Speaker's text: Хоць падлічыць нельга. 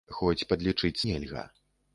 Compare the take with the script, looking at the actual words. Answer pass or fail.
pass